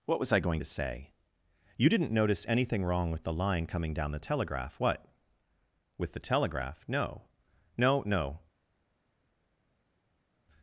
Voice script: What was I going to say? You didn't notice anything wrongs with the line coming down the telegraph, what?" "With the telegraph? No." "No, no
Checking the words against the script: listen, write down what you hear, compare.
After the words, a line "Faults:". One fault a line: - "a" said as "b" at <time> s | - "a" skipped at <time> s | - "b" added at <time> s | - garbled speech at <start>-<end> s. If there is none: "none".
What was I going to say? You didn't notice anything wrong with the line coming down the telegraph, what?" "With the telegraph? No." "No, no
Faults:
- "wrongs" said as "wrong" at 2.8 s